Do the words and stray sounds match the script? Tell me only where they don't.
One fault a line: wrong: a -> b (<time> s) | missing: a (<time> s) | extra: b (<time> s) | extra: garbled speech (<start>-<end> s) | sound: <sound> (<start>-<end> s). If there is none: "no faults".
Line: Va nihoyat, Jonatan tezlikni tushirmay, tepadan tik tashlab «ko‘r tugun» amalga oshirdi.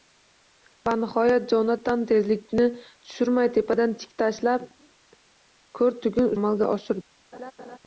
sound: laugh (7.3-7.8 s)